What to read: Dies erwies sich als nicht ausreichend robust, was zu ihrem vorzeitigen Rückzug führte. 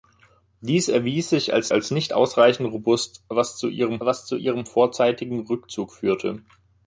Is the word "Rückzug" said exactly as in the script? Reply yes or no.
yes